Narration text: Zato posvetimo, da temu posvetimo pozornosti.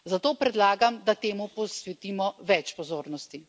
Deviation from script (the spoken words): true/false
true